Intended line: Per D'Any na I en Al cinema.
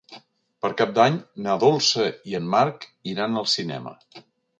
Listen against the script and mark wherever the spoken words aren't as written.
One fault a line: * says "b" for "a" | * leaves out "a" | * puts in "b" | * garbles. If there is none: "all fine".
* puts in "Cap"
* puts in "Dolça"
* puts in "Marc iran"